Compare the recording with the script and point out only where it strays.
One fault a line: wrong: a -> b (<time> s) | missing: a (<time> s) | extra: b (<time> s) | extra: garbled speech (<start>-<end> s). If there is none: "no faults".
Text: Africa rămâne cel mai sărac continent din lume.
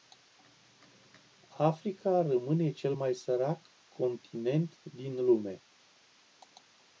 no faults